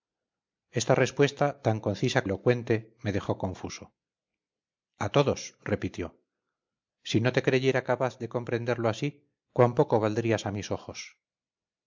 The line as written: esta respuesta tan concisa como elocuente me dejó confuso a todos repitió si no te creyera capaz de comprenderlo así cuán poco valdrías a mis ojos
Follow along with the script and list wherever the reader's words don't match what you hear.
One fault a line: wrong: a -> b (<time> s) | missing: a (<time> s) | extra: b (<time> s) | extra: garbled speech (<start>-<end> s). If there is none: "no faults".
missing: como (2.2 s)